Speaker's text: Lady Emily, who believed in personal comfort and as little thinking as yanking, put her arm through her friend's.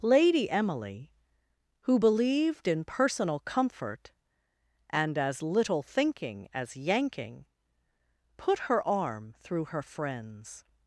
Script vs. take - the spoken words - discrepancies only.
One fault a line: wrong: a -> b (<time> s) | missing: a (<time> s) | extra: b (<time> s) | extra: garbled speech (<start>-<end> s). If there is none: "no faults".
no faults